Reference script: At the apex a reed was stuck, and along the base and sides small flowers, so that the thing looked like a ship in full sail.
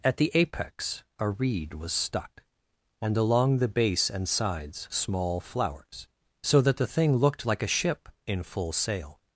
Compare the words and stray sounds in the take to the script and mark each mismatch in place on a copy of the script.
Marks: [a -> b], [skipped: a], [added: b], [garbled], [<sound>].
At the apex a reed was stuck, and along the base and sides small flowers, so that the thing looked like a ship in full sail.